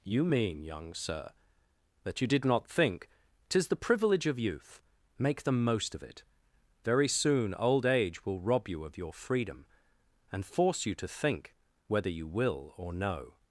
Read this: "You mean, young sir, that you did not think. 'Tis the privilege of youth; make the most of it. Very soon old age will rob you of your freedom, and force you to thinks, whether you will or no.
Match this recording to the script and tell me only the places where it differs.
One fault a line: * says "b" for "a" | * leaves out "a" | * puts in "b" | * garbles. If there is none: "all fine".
* says "think" for "thinks"